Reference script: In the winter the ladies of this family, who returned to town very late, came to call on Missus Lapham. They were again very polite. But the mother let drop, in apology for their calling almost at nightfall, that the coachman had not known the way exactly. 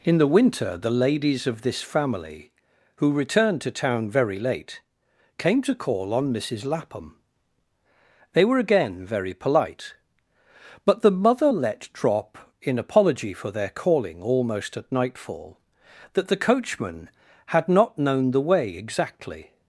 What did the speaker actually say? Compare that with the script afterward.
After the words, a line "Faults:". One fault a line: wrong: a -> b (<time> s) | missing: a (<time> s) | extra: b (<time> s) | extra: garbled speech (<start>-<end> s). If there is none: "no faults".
In the winter the ladies of this family, who returned to town very late, came to call on Missus Lapham. They were again very polite. But the mother let drop, in apology for their calling almost at nightfall, that the coachman had not known the way exactly.
Faults:
no faults